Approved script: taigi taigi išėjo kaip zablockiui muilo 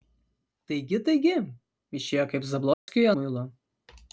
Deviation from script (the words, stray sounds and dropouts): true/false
true